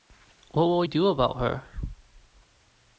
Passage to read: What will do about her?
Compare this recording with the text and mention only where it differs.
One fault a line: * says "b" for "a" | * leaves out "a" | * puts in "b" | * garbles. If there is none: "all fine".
all fine